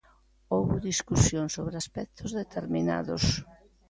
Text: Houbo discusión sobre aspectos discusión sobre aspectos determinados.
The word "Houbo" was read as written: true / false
true